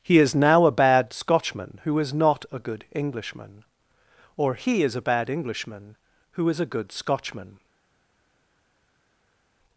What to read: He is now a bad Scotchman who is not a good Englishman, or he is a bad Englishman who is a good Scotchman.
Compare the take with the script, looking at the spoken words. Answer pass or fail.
pass